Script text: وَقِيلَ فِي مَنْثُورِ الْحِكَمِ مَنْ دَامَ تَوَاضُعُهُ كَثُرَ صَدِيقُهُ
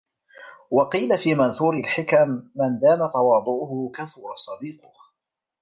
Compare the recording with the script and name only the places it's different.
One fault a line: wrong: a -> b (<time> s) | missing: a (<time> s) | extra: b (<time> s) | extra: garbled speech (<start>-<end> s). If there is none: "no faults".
no faults